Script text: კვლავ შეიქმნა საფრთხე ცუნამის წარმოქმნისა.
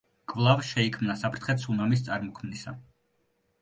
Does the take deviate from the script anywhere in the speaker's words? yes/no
no